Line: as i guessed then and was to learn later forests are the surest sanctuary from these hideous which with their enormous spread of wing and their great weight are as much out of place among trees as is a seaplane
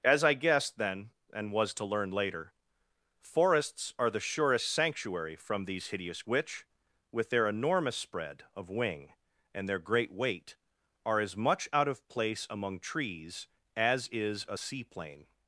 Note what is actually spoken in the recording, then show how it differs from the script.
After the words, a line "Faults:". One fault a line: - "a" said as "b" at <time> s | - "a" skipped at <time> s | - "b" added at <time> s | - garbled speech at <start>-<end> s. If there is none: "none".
as i guessed then and was to learn later forests are the surest sanctuary from these hideous which with their enormous spread of wing and their great weight are as much out of place among trees as is a seaplane
Faults:
none